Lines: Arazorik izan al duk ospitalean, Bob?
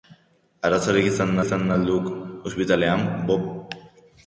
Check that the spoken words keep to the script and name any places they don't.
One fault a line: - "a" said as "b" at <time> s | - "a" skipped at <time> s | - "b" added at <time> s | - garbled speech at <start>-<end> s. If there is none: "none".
- "izan" added at 1.4 s